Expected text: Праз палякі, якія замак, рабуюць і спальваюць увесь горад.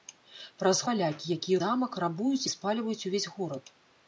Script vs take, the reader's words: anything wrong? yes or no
no